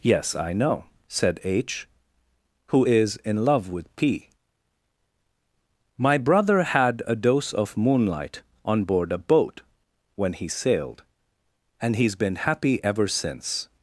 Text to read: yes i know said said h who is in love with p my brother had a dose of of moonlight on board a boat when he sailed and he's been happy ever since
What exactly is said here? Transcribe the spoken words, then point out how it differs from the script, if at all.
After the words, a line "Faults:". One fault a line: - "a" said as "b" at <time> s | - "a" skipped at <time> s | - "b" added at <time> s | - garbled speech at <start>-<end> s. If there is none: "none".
yes i know said h who is in love with p my brother had a dose of moonlight on board a boat when he sailed and he's been happy ever since
Faults:
- "said" skipped at 1.4 s
- "of" skipped at 7.7 s